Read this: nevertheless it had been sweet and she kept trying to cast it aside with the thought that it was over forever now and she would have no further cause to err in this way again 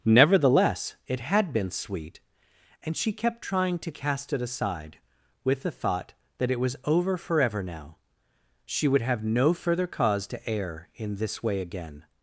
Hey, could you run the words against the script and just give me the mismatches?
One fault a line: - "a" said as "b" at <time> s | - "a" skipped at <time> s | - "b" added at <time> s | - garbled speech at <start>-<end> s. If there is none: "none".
- "and" skipped at 8.0 s